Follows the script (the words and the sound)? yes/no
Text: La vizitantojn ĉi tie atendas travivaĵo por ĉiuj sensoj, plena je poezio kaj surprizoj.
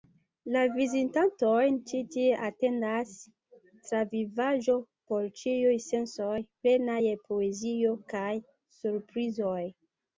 yes